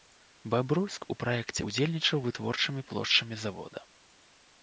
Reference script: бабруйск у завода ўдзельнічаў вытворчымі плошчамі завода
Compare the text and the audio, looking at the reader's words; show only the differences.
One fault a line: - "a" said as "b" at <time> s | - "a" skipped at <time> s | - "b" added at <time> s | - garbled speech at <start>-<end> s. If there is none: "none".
- "завода" said as "праекце" at 1.2 s